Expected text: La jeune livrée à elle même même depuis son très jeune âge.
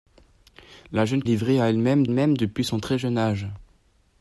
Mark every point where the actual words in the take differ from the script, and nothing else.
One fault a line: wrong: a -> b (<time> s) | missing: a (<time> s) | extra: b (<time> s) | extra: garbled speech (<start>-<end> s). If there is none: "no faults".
no faults